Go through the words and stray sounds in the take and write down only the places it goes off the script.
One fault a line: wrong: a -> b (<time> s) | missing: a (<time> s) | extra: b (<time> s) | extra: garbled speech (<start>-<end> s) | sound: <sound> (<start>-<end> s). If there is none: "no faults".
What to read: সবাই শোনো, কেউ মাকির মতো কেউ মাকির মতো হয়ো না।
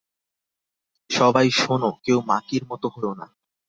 missing: কেউ মাকির মতো (2.9 s)